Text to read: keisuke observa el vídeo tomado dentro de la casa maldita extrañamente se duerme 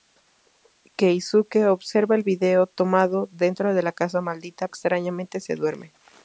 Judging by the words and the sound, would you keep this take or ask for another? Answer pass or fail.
pass